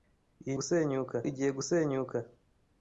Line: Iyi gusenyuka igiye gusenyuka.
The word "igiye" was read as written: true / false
true